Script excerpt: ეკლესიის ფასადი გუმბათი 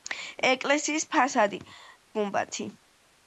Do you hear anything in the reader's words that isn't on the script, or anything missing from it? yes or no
no